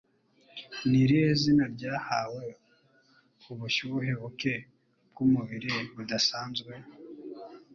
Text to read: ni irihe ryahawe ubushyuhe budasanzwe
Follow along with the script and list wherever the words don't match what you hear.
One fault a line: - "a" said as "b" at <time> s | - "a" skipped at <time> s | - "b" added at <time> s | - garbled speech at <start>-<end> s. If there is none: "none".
- "zina" added at 1.4 s
- "buke bw'umubiri" added at 4.2 s